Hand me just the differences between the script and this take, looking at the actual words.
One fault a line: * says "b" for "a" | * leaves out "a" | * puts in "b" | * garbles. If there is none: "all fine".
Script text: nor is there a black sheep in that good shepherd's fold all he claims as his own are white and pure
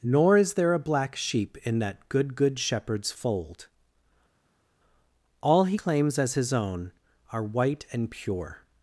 * puts in "good"